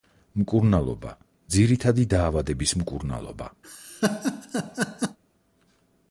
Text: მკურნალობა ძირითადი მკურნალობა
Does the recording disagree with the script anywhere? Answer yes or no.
yes